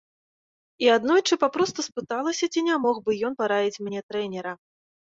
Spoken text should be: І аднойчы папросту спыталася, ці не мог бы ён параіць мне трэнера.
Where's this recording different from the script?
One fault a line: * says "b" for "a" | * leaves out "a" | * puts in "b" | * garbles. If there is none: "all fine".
all fine